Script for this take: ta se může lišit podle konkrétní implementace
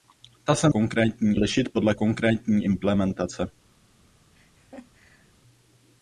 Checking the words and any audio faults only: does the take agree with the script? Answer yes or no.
no